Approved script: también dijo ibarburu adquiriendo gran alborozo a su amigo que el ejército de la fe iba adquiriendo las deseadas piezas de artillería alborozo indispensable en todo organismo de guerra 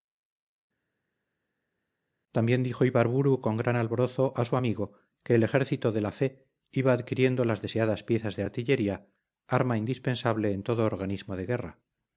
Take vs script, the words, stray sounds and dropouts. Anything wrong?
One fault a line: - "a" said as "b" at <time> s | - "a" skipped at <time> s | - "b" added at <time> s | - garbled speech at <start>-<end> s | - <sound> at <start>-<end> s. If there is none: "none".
- "adquiriendo" said as "con" at 3.4 s
- "alborozo" said as "arma" at 9.5 s